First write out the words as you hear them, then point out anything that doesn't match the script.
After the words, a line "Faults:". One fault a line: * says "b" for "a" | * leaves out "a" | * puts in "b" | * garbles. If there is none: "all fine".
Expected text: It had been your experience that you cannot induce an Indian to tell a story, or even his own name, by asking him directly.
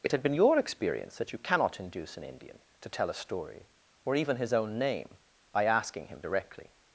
It had been your experience that you cannot induce an Indian to tell a story, or even his own name, by asking him directly.
Faults:
all fine